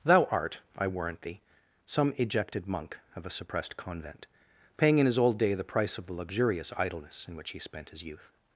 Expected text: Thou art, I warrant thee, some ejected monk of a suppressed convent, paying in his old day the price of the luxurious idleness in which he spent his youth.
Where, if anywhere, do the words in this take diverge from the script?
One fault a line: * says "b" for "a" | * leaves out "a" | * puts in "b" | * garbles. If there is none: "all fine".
all fine